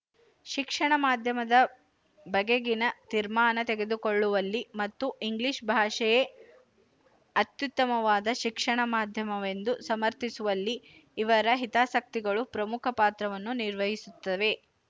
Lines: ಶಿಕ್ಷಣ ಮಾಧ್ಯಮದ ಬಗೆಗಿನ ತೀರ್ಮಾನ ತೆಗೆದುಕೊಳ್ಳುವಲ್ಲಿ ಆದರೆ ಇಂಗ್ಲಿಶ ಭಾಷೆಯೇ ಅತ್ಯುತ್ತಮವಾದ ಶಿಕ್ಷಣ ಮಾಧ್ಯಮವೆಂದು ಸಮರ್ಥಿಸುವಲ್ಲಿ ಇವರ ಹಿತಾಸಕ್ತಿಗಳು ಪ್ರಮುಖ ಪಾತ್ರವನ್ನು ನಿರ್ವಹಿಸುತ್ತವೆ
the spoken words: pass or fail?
fail